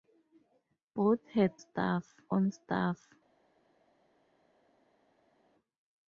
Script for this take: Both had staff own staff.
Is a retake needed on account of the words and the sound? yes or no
no